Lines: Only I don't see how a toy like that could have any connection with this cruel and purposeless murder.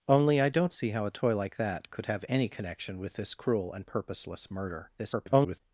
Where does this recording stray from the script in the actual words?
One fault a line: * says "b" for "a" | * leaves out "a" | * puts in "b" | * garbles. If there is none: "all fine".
* garbles